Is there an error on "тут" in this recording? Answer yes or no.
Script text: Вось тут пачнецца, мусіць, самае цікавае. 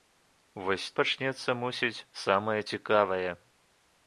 yes